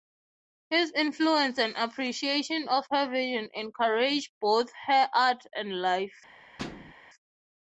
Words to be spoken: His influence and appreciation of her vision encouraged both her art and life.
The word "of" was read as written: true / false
true